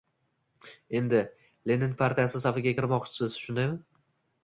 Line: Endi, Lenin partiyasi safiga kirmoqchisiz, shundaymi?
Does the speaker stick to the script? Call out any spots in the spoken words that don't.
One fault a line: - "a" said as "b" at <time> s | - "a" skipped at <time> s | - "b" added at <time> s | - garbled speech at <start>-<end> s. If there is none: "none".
none